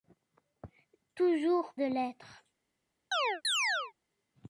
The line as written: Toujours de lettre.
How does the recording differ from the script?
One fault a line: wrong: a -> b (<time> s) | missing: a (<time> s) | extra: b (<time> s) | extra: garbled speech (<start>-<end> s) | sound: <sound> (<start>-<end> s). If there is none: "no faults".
sound: chirp (3.1-3.9 s)